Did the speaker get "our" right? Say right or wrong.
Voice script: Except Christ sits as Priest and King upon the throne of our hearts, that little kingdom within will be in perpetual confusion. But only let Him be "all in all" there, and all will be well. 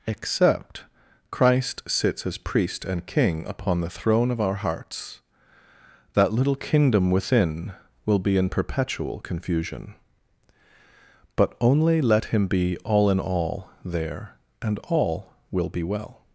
right